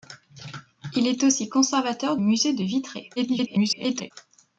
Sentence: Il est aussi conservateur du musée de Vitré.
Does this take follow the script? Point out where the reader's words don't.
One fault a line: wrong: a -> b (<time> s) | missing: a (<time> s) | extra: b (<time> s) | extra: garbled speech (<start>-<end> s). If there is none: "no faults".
missing: du (2.2 s)
extra: garbled speech (3.2-4.1 s)